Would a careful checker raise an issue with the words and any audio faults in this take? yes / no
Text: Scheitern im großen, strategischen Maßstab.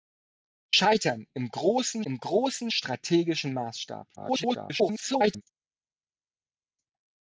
yes